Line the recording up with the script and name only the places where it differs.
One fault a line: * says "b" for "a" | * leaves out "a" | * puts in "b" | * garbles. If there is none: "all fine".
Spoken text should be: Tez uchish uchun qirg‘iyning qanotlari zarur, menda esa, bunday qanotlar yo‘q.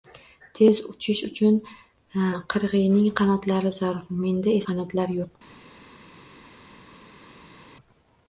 * leaves out "esa bunday"